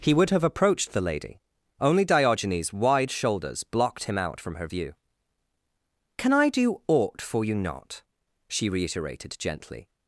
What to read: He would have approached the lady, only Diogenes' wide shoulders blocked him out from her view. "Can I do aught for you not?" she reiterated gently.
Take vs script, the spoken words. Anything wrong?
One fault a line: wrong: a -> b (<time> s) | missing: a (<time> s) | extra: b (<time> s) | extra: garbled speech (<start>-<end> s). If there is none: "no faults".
no faults